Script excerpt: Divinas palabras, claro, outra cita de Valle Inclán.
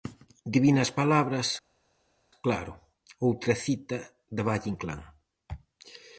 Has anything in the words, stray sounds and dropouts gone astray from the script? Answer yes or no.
no